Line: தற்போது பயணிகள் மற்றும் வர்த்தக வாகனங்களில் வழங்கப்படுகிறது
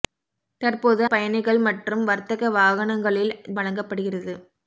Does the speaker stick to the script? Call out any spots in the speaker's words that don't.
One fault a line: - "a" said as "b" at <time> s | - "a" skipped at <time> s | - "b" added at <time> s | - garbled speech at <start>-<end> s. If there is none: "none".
none